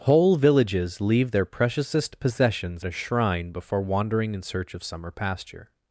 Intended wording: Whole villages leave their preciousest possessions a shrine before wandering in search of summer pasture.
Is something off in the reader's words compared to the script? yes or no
no